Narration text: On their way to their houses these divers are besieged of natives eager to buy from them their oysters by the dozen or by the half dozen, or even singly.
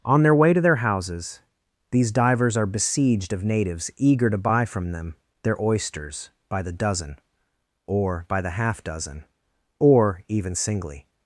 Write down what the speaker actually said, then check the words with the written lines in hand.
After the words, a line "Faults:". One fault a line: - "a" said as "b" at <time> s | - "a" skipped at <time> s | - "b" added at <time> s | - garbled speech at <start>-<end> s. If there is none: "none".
On their way to their houses these divers are besieged of natives eager to buy from them their oysters by the dozen or by the half dozen, or even singly.
Faults:
none